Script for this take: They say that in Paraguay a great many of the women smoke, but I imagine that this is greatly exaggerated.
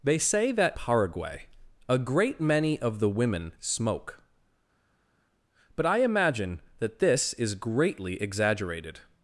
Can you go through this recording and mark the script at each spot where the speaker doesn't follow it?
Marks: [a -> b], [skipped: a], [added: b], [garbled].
They say that [skipped: in] Paraguay a great many of the women smoke, but I imagine that this is greatly exaggerated.